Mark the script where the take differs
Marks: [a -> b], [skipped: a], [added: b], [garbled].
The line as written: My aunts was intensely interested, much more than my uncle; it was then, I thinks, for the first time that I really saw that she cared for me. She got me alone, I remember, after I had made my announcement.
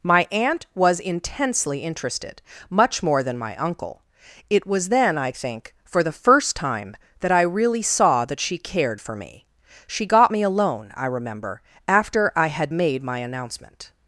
My [aunts -> aunt] was intensely interested, much more than my uncle; it was then, I [thinks, -> think] for the first time that I really saw that she cared for me. She got me alone, I remember, after I had made my announcement.